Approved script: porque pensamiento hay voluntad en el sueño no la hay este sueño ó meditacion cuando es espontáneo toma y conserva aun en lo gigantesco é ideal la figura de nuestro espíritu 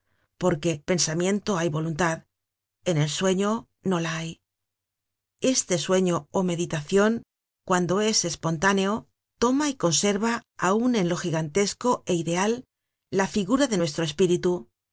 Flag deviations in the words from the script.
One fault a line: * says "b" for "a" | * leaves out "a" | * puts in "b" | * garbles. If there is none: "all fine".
all fine